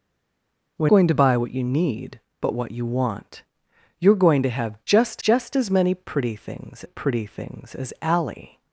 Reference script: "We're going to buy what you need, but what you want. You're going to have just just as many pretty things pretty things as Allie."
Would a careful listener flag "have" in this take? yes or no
no